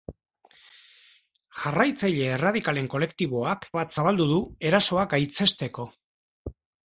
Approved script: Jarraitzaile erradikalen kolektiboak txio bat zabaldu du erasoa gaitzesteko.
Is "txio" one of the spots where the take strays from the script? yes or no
yes